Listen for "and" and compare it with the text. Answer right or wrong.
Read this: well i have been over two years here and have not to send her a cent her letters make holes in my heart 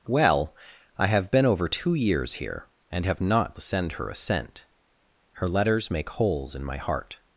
right